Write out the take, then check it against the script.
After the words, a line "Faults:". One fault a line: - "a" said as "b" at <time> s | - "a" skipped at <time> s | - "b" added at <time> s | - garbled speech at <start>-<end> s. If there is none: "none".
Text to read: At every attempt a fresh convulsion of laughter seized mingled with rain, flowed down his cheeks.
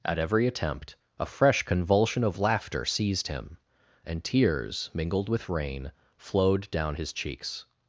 At every attempt a fresh convulsion of laughter seized him, and tears, mingled with rain, flowed down his cheeks.
Faults:
- "him and tears" added at 3.3 s